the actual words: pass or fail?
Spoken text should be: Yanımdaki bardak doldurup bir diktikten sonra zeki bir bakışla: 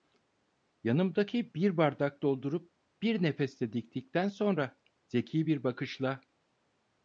fail